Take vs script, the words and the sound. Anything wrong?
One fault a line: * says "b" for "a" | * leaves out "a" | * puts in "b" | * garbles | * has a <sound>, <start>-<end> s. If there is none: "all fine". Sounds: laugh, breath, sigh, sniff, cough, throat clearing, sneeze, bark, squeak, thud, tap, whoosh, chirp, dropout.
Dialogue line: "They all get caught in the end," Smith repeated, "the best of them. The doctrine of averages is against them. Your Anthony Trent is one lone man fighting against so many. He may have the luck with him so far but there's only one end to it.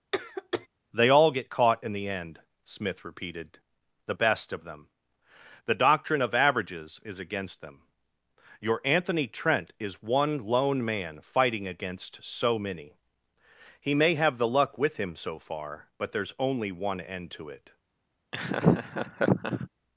* has a cough, 0.1-0.7 s
* has a laugh, 18.3-19.7 s